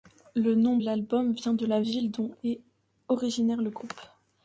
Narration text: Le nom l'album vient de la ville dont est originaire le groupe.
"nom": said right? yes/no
yes